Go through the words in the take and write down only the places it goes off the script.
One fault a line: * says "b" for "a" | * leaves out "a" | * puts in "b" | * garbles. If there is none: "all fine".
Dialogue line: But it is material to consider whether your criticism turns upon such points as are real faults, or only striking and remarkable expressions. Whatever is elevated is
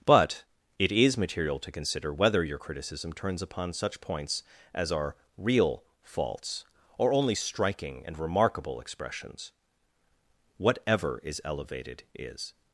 all fine